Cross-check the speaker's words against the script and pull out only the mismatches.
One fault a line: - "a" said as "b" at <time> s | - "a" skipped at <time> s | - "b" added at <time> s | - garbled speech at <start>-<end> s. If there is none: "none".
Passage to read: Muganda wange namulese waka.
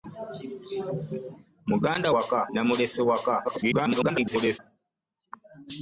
- "wange" said as "waka" at 2.1 s
- garbled speech at 3.4-4.6 s